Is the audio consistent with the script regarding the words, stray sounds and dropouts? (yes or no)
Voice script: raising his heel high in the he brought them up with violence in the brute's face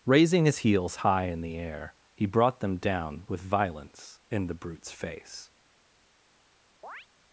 no